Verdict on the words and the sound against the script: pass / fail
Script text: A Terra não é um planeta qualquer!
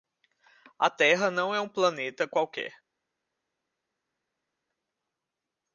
pass